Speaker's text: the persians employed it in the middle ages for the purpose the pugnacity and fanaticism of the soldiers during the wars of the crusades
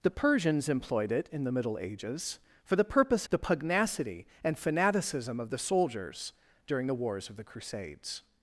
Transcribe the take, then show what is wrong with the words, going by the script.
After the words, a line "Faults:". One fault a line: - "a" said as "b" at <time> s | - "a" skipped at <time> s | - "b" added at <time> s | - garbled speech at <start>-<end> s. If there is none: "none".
the persians employed it in the middle ages for the purpose the pugnacity and fanaticism of the soldiers during the wars of the crusades
Faults:
none